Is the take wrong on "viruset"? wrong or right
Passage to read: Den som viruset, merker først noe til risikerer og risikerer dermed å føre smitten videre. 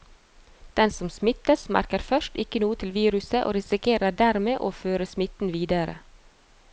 wrong